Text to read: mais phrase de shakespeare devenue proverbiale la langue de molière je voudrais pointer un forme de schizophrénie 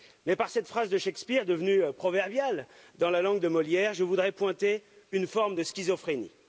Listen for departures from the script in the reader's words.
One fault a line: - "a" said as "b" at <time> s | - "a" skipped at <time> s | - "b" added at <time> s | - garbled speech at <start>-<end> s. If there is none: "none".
- "par cette" added at 0.3 s
- "dans" added at 3.0 s
- "un" said as "une" at 5.1 s